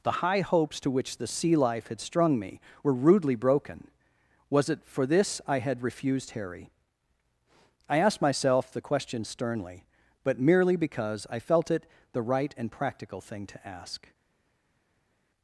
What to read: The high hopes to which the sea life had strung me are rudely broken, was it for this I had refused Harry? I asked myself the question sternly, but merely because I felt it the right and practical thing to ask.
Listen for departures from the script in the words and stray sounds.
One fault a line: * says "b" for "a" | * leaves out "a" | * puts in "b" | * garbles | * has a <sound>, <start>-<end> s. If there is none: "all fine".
* says "were" for "are"